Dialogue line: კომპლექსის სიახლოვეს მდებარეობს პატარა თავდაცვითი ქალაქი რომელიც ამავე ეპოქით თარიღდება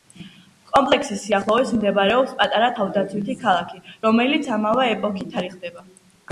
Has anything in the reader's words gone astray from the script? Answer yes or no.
no